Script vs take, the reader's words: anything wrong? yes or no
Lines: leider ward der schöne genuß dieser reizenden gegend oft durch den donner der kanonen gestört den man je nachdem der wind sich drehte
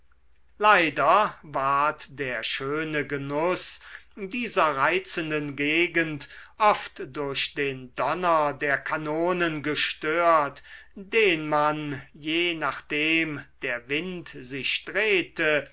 no